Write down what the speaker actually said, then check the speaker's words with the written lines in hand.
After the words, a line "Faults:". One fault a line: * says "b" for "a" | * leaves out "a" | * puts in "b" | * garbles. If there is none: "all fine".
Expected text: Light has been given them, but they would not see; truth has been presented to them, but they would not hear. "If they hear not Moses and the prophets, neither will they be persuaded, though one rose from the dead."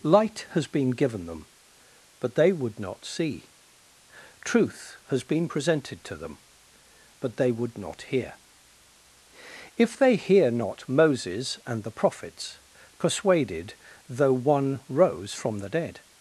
Light has been given them, but they would not see; truth has been presented to them, but they would not hear. "If they hear not Moses and the prophets, persuaded, though one rose from the dead."
Faults:
* leaves out "neither will they be"